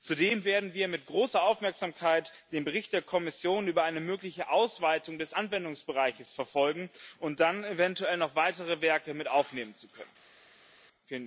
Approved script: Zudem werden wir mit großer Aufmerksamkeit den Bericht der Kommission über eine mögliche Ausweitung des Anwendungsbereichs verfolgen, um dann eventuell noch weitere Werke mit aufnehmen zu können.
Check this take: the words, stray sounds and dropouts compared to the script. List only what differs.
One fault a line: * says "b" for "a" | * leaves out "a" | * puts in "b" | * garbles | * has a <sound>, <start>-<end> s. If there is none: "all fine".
all fine